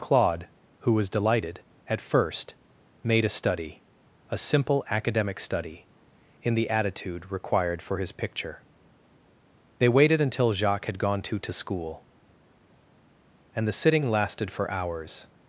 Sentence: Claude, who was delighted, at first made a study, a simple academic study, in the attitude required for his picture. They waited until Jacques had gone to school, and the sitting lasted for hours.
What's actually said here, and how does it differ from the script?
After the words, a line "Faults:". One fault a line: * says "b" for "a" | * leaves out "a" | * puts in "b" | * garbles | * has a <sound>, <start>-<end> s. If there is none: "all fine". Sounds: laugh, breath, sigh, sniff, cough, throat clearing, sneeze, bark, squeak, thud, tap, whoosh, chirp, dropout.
Claude, who was delighted, at first made a study, a simple academic study, in the attitude required for his picture. They waited until Jacques had gone to to school, and the sitting lasted for hours.
Faults:
* puts in "to"